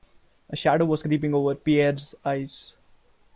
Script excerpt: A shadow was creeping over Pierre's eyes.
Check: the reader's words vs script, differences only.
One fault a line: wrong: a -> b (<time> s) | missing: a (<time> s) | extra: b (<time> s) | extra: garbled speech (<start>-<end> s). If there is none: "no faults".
no faults